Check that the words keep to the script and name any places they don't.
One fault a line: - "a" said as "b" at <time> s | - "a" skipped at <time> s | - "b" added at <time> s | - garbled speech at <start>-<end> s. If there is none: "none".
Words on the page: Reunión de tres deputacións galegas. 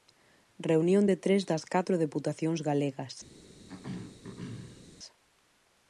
- "das catro" added at 1.5 s